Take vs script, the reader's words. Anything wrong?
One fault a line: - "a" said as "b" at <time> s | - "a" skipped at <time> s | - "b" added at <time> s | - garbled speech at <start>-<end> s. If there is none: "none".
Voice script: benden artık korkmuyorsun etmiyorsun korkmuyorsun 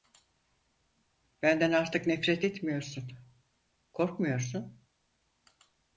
- "korkmuyorsun" said as "nefret" at 2.1 s